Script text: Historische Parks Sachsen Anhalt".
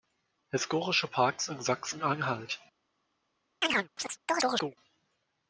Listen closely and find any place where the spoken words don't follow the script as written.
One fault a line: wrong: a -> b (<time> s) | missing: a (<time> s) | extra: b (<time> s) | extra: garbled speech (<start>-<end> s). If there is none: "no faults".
extra: in (1.5 s)